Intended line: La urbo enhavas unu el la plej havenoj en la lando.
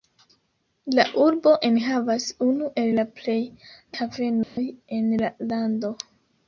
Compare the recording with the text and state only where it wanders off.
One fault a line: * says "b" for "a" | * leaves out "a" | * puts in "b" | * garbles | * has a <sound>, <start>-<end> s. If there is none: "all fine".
* has a dropout, 4.4-4.6 s